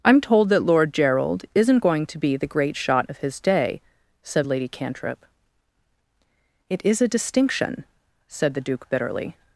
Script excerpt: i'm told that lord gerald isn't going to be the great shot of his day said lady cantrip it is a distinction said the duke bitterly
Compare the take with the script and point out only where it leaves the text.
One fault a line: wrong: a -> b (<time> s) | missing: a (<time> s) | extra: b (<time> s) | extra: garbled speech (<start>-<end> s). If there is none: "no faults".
no faults